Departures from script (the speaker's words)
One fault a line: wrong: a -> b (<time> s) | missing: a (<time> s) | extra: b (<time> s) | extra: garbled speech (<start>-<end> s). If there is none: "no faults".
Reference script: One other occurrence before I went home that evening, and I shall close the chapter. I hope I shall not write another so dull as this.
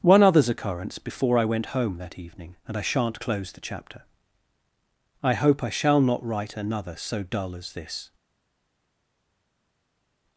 wrong: other -> others (0.2 s)
wrong: shall -> shan't (2.8 s)